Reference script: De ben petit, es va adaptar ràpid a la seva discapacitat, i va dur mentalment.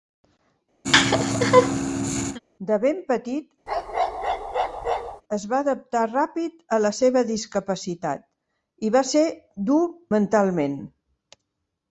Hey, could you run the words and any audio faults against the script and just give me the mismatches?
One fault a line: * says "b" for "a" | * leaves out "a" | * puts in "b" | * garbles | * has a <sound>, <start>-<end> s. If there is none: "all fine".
* has a laugh, 0.8-2.4 s
* has a bark, 3.7-5.2 s
* puts in "ser"